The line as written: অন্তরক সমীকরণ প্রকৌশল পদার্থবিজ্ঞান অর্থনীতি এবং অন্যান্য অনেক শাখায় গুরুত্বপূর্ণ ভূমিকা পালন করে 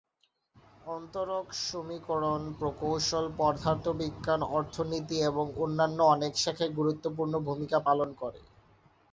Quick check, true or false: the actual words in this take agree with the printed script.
true